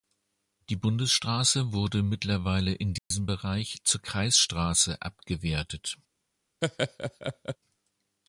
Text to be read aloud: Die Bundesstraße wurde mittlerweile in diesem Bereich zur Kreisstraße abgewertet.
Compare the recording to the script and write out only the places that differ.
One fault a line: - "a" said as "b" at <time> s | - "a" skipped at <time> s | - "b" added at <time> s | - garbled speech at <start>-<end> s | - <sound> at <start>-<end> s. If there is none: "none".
- dropout at 3.0-3.1 s
- laugh at 6.6-7.6 s